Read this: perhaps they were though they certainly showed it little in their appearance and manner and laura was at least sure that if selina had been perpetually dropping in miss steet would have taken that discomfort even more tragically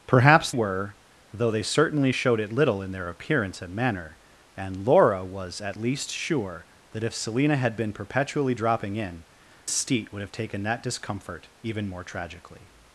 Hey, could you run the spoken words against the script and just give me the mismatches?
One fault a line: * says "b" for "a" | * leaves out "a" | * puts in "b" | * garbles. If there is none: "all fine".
* leaves out "they"
* leaves out "miss"